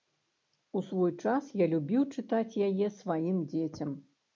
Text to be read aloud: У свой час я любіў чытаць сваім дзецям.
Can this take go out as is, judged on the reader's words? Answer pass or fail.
fail